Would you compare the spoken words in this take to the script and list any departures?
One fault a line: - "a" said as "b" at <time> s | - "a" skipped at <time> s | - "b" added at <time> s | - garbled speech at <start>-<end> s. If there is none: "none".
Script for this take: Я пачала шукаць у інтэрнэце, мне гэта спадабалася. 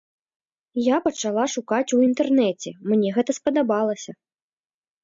none